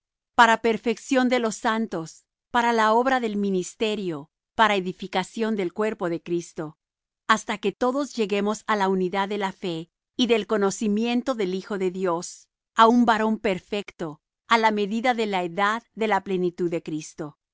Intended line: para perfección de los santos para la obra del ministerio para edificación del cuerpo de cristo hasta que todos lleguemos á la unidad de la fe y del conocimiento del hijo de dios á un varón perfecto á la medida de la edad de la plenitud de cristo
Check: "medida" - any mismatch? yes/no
no